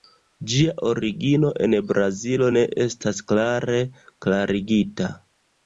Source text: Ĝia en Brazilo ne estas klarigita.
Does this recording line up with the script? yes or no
no